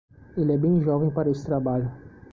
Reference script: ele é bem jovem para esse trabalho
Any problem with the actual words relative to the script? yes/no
no